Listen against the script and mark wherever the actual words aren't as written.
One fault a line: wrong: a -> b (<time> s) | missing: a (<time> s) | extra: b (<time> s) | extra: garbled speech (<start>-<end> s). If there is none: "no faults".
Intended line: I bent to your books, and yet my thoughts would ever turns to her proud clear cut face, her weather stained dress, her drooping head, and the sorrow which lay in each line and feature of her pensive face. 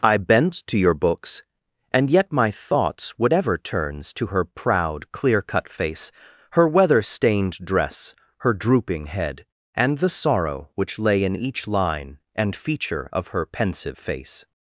no faults